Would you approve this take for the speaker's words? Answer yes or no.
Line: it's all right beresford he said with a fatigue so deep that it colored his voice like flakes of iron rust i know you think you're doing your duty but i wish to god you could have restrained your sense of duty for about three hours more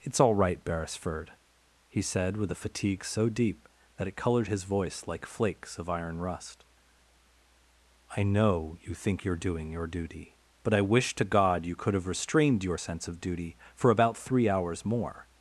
yes